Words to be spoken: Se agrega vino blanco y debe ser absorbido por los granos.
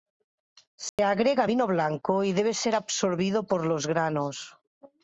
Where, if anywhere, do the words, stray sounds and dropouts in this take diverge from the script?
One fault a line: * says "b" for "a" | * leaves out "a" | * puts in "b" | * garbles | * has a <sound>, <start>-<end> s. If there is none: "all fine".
* has a dropout, 0.9-1.0 s